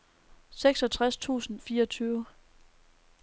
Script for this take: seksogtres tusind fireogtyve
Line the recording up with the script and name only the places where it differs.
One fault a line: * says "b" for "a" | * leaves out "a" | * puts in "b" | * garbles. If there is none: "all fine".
all fine